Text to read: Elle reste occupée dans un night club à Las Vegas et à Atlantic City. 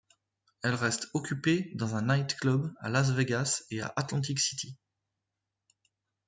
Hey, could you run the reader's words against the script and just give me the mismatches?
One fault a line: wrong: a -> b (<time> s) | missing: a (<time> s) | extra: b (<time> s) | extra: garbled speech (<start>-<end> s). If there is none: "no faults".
no faults